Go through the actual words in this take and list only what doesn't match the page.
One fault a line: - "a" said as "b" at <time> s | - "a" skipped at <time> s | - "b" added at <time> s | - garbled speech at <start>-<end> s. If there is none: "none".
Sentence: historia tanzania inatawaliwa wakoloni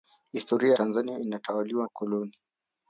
none